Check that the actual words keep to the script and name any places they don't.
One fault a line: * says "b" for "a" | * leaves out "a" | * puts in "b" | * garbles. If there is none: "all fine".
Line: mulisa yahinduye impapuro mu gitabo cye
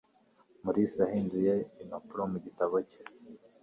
all fine